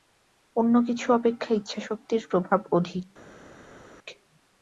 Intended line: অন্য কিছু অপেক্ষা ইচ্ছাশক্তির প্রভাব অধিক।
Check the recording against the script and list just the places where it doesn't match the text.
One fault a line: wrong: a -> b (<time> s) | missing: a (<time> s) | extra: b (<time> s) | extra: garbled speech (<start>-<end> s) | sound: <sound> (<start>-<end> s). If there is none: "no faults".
no faults